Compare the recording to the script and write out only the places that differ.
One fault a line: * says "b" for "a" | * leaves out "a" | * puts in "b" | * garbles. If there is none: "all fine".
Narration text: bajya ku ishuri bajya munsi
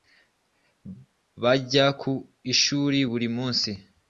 * says "buri" for "bajya"